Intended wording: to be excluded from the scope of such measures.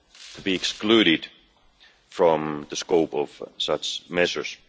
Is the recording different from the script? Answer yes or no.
no